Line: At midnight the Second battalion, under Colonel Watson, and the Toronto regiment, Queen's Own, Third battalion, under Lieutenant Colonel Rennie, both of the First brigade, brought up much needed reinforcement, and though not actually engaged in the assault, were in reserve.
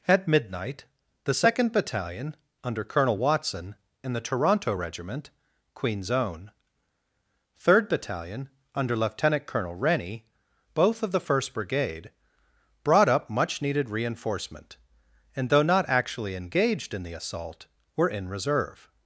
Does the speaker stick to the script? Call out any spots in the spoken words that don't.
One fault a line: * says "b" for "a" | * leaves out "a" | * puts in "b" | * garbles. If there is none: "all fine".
all fine